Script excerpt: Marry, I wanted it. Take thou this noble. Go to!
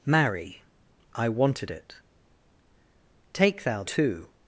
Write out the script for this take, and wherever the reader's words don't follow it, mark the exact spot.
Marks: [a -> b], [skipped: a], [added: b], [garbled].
Marry, I wanted it. Take thou [skipped: this noble. Go] to!